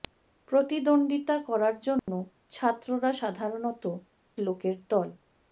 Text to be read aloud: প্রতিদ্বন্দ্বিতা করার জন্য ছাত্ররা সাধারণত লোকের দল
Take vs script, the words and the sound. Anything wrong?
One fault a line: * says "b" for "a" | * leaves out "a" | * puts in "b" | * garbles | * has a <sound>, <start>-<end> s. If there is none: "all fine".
* has a dropout, 2.0-2.1 s